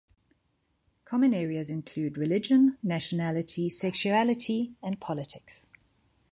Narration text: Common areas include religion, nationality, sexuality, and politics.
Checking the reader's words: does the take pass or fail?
pass